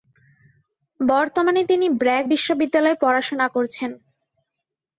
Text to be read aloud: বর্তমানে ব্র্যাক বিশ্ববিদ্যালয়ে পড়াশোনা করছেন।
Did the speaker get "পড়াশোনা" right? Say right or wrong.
right